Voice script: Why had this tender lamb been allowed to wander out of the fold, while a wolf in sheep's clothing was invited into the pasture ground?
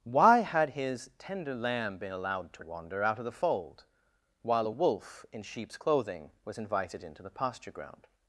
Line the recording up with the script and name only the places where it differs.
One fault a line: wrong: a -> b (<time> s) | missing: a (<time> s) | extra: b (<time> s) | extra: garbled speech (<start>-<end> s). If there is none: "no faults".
wrong: this -> his (0.7 s)